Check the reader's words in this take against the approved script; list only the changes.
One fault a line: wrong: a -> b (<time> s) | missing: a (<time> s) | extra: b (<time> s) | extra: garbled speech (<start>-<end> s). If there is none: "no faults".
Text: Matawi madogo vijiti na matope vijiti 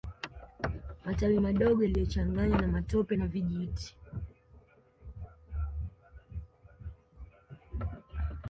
wrong: vijiti -> yaliyochanganywa (1.8 s)
extra: na (3.1 s)